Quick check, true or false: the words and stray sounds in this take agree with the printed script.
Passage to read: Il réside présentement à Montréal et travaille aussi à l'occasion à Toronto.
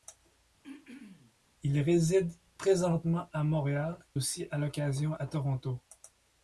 false